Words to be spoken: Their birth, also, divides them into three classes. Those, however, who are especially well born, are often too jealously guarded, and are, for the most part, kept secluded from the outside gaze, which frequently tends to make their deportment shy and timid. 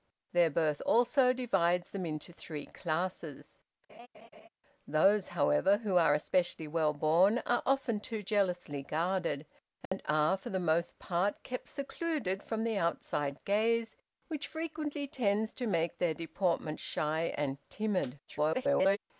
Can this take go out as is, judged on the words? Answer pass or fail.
fail